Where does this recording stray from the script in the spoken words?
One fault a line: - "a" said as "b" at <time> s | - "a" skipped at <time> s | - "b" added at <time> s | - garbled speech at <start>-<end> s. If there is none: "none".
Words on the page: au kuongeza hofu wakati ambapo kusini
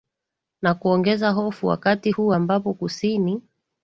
- "au" said as "na" at 0.6 s
- "huu" added at 2.1 s